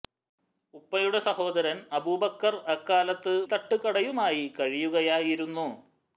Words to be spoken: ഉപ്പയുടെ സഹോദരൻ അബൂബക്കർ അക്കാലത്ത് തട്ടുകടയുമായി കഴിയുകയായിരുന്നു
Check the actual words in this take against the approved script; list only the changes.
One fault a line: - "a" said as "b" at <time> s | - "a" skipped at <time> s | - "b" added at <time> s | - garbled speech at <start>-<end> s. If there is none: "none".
none